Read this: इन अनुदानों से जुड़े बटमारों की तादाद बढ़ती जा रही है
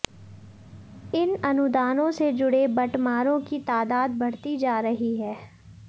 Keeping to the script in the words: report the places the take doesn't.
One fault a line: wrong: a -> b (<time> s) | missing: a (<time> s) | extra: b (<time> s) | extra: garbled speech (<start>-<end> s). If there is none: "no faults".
no faults